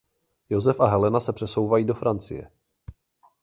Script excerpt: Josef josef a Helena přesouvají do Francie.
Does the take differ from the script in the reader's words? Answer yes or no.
yes